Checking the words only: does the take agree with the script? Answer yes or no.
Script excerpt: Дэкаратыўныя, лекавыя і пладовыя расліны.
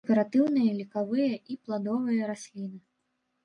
yes